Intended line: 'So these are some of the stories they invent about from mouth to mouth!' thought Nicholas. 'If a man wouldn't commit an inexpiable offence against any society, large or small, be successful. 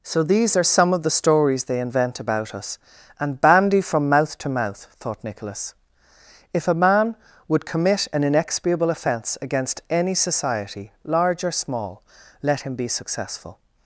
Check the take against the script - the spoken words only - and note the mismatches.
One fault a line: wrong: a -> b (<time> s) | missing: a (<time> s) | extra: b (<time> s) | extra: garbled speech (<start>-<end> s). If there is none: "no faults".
extra: us and bandy (2.5 s)
wrong: wouldn't -> would (7.5 s)
extra: let him (12.4 s)